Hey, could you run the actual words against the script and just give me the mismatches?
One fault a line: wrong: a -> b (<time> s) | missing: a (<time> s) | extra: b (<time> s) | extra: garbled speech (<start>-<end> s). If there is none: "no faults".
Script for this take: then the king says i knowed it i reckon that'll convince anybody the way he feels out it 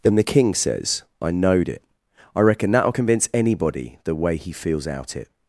no faults